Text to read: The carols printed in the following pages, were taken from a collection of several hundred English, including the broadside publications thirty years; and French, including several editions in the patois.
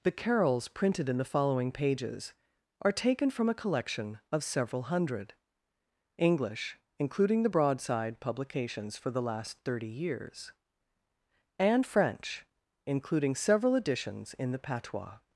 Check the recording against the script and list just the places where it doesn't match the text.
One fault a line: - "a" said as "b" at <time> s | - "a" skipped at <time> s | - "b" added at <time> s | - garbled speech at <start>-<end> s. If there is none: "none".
- "were" said as "are" at 2.8 s
- "for the last" added at 9.0 s